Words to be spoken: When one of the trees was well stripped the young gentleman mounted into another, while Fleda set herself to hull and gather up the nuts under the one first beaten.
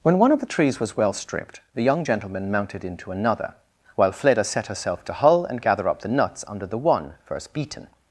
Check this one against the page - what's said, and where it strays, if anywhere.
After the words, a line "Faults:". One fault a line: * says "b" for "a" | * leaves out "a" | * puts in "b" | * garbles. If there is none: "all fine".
When one of the trees was well stripped the young gentleman mounted into another, while Fleda set herself to hull and gather up the nuts under the one first beaten.
Faults:
all fine